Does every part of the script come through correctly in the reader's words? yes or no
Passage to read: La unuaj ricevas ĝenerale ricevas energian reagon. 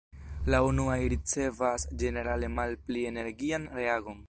no